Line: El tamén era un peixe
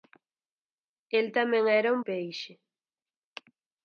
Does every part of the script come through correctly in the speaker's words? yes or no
yes